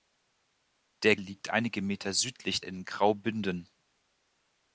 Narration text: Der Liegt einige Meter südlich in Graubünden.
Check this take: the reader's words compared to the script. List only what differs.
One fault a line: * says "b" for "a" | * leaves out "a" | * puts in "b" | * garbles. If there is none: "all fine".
all fine